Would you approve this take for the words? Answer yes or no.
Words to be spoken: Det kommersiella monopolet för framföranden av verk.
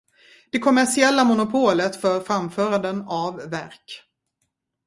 yes